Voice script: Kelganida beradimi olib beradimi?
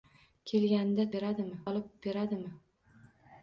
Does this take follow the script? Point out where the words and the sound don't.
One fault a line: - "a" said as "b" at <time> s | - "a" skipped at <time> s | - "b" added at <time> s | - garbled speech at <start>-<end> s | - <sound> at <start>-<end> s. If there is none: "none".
none